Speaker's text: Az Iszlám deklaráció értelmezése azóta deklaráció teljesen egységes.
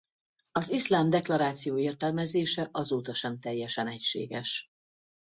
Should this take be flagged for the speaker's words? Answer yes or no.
yes